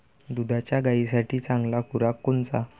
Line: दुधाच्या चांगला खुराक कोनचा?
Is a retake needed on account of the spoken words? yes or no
yes